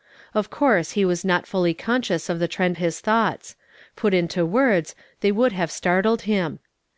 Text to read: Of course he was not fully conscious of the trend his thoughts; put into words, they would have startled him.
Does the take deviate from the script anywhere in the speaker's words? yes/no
no